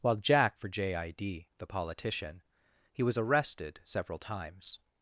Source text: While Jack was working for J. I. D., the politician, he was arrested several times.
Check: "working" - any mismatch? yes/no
yes